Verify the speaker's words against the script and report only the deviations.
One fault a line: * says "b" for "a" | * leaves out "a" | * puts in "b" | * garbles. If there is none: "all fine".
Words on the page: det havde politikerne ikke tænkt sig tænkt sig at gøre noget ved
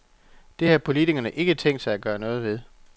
* says "har" for "havde"
* leaves out "tænkt sig"